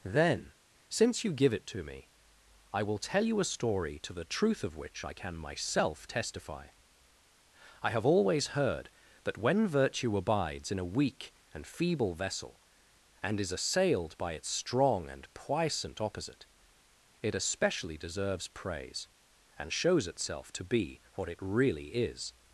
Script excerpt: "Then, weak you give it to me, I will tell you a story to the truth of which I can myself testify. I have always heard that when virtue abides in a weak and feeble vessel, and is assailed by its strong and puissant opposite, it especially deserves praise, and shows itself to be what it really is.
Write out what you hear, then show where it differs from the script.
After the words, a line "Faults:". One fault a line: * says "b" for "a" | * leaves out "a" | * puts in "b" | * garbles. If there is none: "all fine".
"Then, since you give it to me, I will tell you a story to the truth of which I can myself testify. I have always heard that when virtue abides in a weak and feeble vessel, and is assailed by its strong and puissant opposite, it especially deserves praise, and shows itself to be what it really is.
Faults:
* says "since" for "weak"